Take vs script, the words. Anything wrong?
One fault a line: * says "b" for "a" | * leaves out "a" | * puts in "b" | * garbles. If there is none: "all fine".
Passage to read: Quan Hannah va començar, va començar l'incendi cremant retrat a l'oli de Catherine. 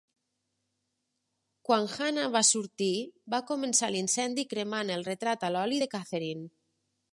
* says "sortir" for "començar"
* puts in "el"